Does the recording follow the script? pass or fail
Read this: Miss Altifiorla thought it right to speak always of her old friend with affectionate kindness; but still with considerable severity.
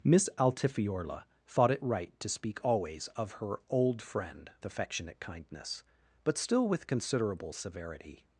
fail